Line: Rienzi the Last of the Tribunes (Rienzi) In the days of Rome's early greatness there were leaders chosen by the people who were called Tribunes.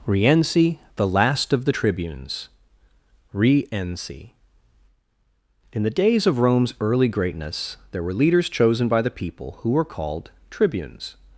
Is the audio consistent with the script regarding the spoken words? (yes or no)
yes